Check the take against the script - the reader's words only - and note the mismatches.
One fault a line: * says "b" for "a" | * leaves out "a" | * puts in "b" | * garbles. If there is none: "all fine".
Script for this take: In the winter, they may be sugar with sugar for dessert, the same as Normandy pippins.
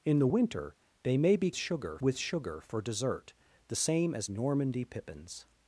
all fine